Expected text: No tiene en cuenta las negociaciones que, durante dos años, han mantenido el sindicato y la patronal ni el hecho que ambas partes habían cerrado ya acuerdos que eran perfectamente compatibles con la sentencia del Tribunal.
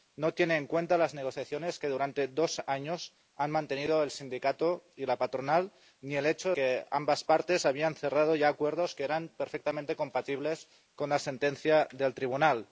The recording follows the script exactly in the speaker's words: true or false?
true